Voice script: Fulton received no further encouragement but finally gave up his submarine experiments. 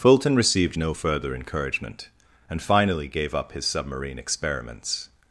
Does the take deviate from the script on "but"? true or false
true